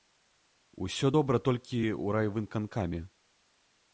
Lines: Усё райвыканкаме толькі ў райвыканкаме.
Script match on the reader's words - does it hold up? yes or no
no